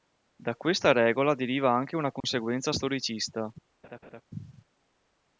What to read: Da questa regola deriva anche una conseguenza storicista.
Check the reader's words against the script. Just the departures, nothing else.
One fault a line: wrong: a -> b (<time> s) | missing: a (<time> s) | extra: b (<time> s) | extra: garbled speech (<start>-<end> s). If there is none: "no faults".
no faults